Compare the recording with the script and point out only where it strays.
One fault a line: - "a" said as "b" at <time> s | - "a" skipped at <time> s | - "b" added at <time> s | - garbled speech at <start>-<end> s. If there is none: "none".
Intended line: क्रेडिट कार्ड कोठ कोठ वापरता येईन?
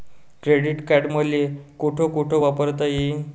- "मले" added at 1.1 s